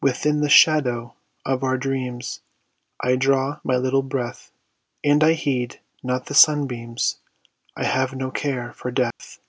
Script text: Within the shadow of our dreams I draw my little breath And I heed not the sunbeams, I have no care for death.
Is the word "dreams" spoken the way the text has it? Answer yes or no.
yes